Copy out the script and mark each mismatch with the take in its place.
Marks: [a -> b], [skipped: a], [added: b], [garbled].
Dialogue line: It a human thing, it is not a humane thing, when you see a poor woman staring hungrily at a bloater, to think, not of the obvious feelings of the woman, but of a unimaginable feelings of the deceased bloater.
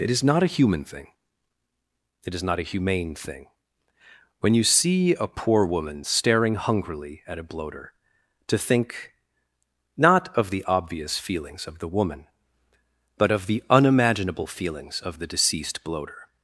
It [added: is not] a human thing, it is not a humane thing, when you see a poor woman staring hungrily at a bloater, to think, not of the obvious feelings of the woman, but of [a -> the] unimaginable feelings of the deceased bloater.